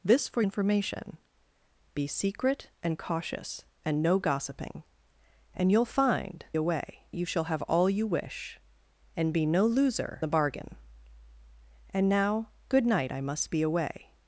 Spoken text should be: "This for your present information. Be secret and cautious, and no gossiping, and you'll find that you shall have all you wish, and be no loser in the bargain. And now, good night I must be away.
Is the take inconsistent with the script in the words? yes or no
yes